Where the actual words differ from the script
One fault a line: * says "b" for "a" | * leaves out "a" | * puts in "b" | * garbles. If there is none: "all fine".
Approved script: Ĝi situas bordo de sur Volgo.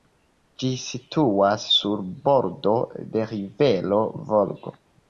* puts in "sur"
* says "rivero" for "sur"